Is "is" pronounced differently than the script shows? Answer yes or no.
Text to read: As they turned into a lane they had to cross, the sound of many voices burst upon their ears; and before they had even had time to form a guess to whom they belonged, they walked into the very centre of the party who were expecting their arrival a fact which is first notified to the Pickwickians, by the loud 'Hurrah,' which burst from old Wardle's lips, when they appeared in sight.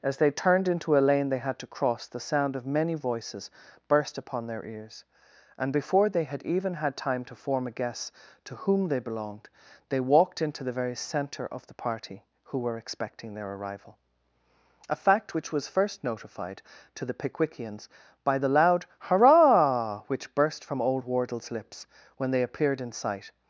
yes